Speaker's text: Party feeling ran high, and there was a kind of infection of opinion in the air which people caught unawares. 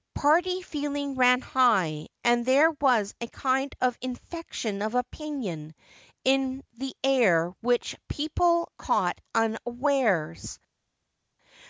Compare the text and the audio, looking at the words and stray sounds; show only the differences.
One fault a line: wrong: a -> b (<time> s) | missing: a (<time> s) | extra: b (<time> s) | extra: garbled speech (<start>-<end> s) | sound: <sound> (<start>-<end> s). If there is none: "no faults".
no faults